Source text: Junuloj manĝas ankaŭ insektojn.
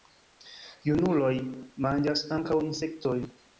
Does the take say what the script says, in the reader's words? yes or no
yes